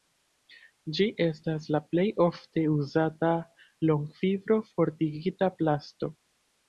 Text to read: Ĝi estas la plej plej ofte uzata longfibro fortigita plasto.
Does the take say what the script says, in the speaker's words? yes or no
no